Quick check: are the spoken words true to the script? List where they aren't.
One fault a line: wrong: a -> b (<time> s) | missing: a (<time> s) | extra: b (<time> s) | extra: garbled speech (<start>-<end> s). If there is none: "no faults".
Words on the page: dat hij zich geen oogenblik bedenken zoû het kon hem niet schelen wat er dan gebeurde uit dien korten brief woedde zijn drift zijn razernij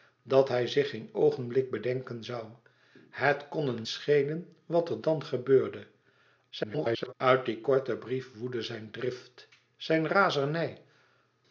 missing: niet (3.9 s)
extra: garbled speech (6.5-7.1 s)